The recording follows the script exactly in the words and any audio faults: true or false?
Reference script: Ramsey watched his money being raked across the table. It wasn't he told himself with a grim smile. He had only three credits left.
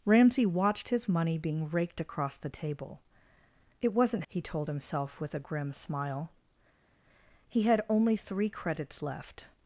true